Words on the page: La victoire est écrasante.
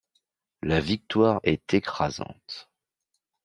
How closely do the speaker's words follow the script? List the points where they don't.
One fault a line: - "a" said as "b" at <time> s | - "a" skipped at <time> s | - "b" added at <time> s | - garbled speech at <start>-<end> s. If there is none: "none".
none